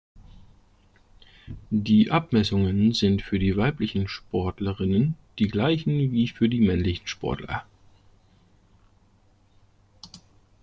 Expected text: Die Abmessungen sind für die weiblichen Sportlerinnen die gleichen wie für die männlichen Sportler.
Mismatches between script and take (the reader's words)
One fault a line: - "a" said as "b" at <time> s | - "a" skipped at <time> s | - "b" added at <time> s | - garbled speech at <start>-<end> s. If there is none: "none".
none